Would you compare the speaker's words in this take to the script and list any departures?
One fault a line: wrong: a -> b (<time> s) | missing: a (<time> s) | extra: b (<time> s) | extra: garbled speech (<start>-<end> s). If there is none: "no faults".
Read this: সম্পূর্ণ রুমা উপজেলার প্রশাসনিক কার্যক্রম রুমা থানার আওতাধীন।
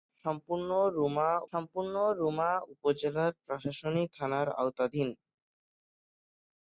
extra: সম্পূর্ণ রুমা (1.5 s)
missing: কার্যক্রম রুমা (4.1 s)